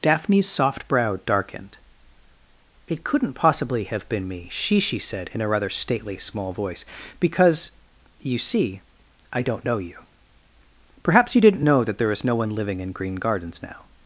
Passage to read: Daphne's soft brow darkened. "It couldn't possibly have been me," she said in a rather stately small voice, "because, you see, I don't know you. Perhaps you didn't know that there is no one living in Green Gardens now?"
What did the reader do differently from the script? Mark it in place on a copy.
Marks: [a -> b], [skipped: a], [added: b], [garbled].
Daphne's soft brow darkened. "It couldn't possibly have been me," she [added: she] said in a rather stately small voice, "because, you see, I don't know you. Perhaps you didn't know that there is no one living in Green Gardens now?"